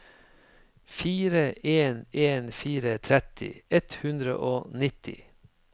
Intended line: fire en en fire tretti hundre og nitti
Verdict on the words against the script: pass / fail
fail